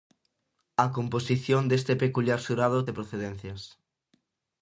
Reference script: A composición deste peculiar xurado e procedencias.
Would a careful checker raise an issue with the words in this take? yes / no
no